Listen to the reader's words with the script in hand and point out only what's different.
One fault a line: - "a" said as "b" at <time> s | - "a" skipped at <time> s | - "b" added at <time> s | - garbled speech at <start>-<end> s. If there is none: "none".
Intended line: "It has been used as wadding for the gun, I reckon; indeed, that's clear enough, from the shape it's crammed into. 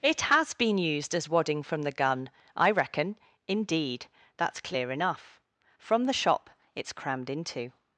- "for" said as "from" at 1.6 s
- "shape" said as "shop" at 6.1 s